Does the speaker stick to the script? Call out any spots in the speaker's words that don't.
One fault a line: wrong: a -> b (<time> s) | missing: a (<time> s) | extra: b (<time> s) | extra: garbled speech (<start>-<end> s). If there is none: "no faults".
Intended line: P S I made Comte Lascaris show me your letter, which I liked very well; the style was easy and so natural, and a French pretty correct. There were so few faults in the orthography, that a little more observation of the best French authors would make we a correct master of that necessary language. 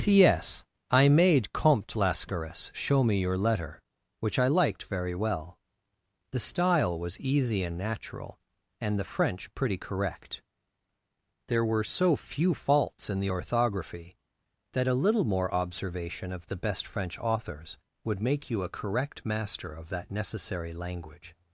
missing: so (7.8 s)
wrong: a -> the (9.0 s)
wrong: we -> you (18.5 s)